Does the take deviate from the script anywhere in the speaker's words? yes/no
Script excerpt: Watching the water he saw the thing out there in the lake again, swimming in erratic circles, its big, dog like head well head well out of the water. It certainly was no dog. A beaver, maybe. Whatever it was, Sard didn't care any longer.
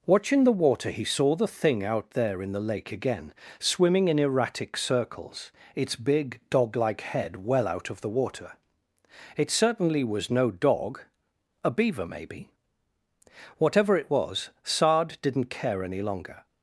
yes